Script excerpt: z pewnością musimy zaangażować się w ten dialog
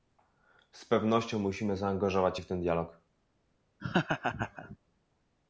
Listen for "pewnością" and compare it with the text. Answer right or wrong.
right